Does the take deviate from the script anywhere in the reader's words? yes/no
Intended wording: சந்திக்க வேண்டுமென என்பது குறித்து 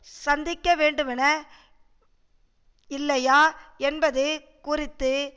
yes